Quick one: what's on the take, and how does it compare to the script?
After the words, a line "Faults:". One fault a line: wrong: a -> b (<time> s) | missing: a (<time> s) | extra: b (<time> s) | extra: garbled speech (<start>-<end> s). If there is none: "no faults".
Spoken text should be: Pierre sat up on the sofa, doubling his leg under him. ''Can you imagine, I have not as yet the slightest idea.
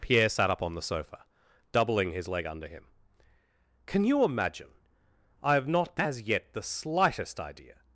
Pierre sat up on the sofa, doubling his leg under him. ''Can you imagine, I have not as yet the slightest idea.
Faults:
no faults